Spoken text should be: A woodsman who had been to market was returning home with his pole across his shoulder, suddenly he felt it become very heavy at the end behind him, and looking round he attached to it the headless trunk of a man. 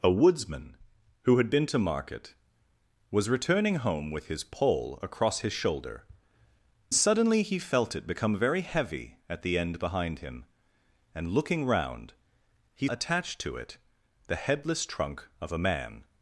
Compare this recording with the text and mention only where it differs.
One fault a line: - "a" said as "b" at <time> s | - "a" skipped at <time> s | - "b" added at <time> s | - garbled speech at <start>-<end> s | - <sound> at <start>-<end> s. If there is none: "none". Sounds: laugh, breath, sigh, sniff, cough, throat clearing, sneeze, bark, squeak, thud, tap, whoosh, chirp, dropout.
none